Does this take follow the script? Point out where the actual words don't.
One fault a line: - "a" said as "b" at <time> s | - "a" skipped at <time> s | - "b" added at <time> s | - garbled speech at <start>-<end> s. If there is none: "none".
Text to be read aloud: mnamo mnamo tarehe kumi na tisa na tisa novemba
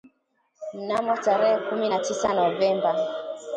- "mnamo" skipped at 1.2 s
- "na tisa" skipped at 2.3 s